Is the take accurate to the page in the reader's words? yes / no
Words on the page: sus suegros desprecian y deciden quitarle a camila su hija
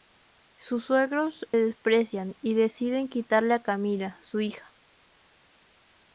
yes